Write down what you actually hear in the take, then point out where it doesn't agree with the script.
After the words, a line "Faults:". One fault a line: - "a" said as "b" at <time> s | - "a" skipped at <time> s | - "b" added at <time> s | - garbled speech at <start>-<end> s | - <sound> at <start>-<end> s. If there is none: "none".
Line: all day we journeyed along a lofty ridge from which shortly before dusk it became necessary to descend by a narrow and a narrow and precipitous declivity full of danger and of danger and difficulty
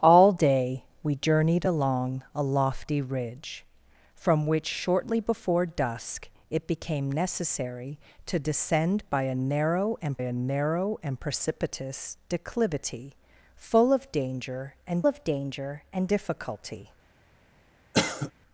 all day we journeyed along a lofty ridge from which shortly before dusk it became necessary to descend by a narrow and a narrow and precipitous declivity full of danger and of danger and difficulty
Faults:
- cough at 17.9-18.3 s